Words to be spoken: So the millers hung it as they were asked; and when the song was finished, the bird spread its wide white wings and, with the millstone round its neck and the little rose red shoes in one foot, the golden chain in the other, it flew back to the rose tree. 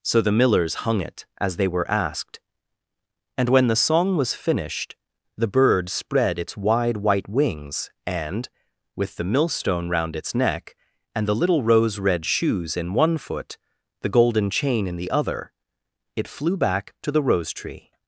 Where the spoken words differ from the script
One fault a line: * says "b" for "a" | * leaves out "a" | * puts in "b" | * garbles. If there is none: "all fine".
all fine